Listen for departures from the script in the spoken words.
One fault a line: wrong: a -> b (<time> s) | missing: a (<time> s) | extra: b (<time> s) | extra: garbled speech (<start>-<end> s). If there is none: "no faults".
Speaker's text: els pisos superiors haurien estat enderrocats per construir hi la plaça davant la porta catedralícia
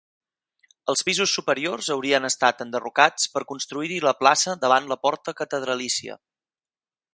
no faults